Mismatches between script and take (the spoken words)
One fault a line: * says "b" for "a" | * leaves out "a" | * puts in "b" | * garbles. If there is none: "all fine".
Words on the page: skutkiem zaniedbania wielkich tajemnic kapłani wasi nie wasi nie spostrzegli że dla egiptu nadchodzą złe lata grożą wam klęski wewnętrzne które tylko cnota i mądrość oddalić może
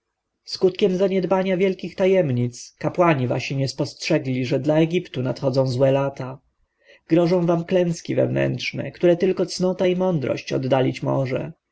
* leaves out "wasi nie"